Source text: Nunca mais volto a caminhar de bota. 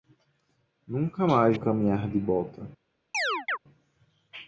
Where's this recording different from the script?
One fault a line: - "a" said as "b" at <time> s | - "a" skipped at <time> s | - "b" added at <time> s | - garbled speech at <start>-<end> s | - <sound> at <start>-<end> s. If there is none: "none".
- "volto" skipped at 1.6 s
- chirp at 3.1-3.6 s